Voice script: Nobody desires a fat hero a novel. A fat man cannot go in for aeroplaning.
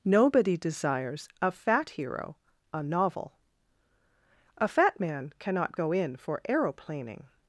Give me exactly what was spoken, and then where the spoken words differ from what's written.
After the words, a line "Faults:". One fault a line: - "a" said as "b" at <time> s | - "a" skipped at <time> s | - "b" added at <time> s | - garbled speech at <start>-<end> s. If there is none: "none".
Nobody desires a fat hero a novel. A fat man cannot go in for aeroplaning.
Faults:
none